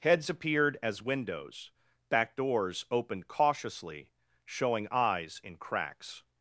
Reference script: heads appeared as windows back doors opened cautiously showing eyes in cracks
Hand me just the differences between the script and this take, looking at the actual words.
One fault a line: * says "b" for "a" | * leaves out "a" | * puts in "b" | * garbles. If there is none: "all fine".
all fine